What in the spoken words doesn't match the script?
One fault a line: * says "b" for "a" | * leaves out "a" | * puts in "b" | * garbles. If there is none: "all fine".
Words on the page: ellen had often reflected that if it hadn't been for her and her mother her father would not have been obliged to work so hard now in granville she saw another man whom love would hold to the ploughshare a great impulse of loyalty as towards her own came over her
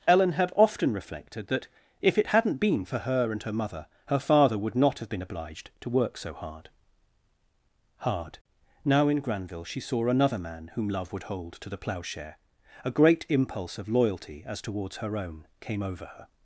* puts in "hard"